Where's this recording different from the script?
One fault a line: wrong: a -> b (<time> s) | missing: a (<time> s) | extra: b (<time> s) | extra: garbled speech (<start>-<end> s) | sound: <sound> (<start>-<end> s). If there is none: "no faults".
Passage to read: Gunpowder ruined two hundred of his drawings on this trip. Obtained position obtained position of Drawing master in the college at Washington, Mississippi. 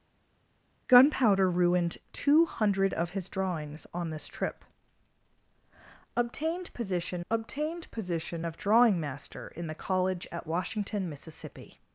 no faults